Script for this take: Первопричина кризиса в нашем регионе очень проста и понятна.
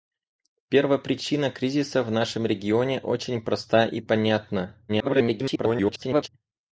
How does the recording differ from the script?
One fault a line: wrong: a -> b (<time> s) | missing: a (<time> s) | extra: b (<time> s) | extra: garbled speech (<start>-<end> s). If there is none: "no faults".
extra: garbled speech (4.9-6.3 s)